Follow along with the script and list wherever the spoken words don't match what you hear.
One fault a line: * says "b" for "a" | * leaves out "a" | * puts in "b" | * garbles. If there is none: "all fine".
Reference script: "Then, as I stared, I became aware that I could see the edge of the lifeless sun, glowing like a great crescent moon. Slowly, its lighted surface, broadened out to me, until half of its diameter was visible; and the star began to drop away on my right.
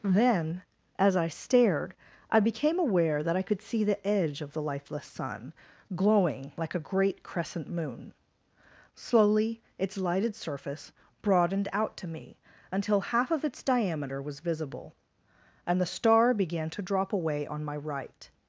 all fine